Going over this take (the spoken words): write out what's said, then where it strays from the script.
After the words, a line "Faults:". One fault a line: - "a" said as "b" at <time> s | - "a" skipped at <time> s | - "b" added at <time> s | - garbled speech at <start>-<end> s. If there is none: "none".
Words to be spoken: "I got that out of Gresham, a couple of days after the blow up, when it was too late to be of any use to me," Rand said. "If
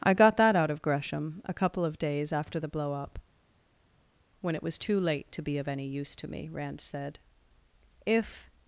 "I got that out of Gresham, a couple of days after the blow up, when it was too late to be of any use to me," Rand said. "If
Faults:
none